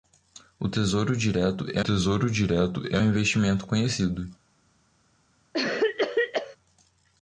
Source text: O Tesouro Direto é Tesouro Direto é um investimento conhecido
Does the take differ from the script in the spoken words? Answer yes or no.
no